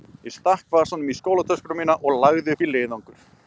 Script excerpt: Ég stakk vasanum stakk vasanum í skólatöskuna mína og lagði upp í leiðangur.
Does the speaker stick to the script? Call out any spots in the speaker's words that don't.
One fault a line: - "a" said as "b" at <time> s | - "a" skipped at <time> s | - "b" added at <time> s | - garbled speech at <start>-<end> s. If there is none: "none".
- "stakk vasanum" skipped at 1.1 s